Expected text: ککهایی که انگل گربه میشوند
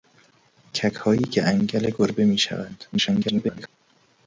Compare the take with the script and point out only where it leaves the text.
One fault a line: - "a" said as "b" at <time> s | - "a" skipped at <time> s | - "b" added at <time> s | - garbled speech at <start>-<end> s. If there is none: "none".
- garbled speech at 2.9-3.7 s